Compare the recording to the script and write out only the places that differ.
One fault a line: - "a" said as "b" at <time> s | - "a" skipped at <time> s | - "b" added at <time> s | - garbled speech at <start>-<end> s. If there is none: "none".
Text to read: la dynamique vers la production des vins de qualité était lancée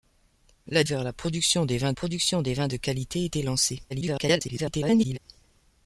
- "dynamique" skipped at 0.8 s
- "production des vins" added at 1.9 s
- garbled speech at 3.9-5.2 s